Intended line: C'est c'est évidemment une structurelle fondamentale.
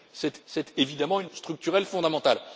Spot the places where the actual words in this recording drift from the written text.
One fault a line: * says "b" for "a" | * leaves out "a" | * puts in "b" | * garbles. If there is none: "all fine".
all fine